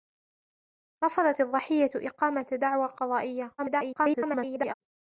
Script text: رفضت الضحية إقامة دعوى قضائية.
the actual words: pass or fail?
fail